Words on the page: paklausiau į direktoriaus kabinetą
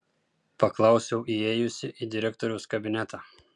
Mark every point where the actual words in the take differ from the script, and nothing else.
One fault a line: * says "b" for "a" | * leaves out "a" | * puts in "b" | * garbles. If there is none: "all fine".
* puts in "įėjusi"